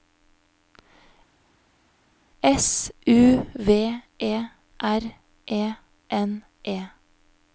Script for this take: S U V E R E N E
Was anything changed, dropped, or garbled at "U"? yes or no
no